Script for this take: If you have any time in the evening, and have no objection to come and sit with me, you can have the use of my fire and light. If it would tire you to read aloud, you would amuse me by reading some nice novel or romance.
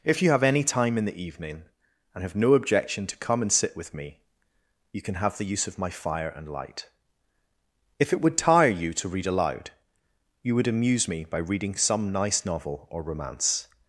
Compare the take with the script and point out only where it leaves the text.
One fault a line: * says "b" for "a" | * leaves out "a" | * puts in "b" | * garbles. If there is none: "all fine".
all fine